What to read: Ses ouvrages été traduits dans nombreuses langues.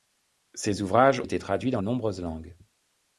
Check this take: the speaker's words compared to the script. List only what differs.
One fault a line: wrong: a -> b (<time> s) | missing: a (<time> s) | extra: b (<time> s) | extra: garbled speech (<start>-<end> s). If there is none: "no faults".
no faults